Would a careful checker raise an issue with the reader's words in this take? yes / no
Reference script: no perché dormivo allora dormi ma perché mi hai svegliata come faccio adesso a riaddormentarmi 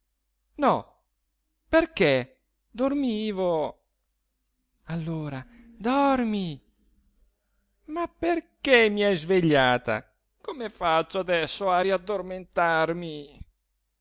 no